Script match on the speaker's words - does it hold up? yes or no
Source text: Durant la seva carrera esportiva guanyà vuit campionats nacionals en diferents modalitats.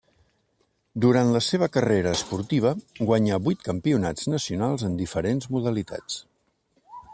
yes